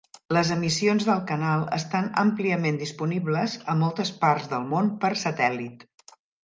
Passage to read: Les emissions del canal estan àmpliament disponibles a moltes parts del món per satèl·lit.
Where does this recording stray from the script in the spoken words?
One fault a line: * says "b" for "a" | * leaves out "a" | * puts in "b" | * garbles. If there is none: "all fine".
all fine